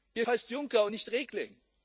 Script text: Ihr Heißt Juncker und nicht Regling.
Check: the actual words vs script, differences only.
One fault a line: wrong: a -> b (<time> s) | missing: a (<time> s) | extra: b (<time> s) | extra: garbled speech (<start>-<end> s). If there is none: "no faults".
no faults